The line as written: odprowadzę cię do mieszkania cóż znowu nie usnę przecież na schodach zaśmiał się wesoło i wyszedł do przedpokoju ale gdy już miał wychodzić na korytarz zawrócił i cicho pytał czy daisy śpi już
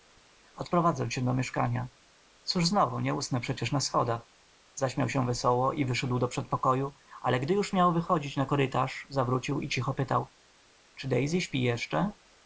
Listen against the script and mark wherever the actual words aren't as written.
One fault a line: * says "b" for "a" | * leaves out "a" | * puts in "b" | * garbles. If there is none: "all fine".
* says "jeszcze" for "już"